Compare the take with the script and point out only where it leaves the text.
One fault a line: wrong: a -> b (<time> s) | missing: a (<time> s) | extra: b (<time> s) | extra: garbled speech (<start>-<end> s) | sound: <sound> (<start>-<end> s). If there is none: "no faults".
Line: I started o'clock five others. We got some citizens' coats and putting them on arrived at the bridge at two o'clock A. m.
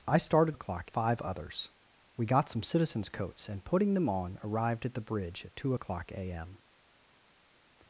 no faults